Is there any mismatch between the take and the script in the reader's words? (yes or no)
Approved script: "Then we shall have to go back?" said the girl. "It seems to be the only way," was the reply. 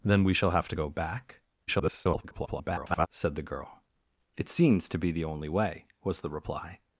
yes